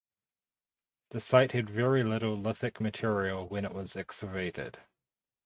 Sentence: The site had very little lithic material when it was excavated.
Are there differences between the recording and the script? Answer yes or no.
no